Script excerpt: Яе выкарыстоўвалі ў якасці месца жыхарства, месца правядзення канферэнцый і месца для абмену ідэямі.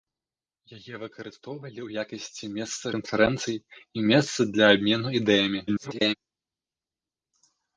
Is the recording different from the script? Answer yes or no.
yes